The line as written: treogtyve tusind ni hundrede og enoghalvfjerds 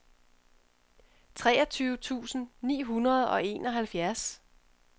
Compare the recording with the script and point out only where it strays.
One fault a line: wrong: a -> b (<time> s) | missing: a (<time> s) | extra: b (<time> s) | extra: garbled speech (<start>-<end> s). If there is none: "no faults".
no faults